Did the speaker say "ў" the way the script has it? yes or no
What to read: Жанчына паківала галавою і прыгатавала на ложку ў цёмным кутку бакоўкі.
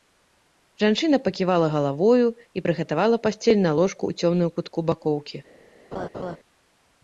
yes